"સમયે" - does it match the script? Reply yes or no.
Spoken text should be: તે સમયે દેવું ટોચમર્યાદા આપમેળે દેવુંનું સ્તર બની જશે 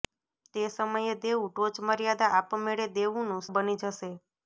yes